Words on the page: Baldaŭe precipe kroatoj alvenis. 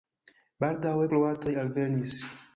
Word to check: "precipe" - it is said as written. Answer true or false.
false